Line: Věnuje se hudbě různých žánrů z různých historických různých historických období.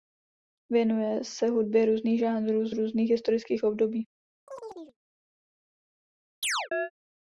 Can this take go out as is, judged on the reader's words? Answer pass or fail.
fail